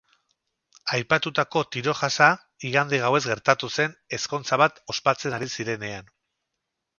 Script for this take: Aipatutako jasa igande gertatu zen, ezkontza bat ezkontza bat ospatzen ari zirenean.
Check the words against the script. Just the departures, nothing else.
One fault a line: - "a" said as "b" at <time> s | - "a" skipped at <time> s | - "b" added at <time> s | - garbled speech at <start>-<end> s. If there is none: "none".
- "tiro" added at 1.8 s
- "gauez" added at 3.0 s
- "ezkontza bat" skipped at 4.8 s